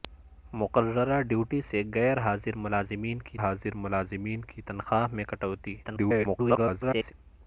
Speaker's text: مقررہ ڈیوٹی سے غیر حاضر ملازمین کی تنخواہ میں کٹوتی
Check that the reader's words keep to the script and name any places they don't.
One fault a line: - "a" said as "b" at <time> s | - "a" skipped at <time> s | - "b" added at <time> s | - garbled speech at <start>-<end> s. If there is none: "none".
- "حاضر ملازمین کی" added at 3.4 s
- garbled speech at 5.8-7.1 s